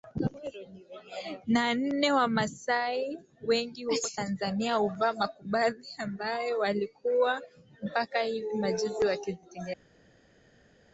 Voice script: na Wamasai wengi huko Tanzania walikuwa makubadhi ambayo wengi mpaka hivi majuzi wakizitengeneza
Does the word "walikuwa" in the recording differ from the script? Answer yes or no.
yes